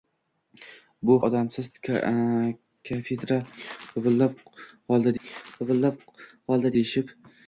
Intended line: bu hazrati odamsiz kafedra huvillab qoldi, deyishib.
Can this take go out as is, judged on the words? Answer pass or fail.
fail